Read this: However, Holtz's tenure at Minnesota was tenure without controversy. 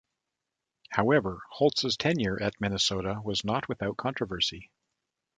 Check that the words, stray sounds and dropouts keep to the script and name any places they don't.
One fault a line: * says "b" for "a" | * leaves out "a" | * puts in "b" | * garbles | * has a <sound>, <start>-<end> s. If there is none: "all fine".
* says "not" for "tenure"